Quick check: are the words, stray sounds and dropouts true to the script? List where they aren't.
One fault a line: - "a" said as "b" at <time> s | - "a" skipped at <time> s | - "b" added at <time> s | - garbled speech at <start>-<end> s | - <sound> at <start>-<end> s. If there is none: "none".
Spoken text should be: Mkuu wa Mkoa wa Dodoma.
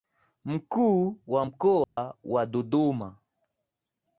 - dropout at 1.8-2.0 s